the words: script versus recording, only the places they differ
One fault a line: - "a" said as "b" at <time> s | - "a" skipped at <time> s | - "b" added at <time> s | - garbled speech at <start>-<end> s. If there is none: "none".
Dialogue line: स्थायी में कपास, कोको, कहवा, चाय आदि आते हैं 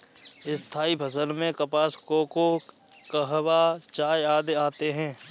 - "फसल" added at 0.9 s